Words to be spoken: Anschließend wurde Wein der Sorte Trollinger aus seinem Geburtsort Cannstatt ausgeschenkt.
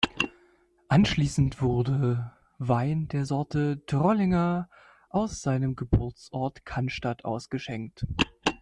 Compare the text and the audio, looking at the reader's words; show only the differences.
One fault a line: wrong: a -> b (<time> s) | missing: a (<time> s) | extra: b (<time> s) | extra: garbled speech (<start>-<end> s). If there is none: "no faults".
no faults